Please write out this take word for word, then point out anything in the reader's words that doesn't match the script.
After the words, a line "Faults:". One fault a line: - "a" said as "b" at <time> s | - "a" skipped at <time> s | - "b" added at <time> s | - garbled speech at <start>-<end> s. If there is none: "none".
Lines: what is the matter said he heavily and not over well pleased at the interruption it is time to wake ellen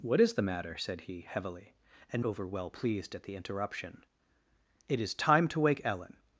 what is the matter said he heavily and over well pleased at the interruption it is time to wake ellen
Faults:
- "not" skipped at 2.2 s